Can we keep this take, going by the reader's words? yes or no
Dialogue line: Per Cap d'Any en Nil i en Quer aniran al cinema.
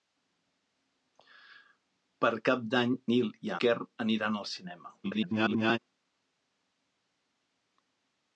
no